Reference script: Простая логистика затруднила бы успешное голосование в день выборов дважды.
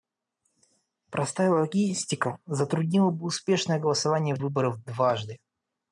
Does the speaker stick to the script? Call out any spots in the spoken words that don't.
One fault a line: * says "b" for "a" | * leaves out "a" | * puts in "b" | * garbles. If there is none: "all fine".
* leaves out "день"